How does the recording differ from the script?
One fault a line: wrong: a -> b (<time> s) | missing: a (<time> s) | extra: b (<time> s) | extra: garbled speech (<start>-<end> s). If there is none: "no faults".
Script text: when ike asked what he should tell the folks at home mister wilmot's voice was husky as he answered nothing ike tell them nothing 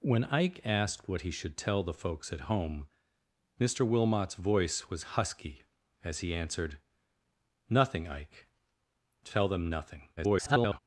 extra: garbled speech (10.2-10.8 s)